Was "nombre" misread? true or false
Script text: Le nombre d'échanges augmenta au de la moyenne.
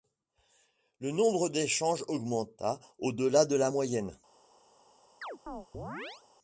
false